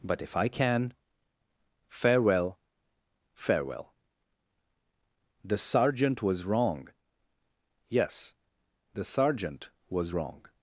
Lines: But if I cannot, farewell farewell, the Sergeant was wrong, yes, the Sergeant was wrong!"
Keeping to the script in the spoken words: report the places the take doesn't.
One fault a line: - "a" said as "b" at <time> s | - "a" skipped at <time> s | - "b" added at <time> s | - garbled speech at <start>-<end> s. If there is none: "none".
- "cannot" said as "can" at 0.5 s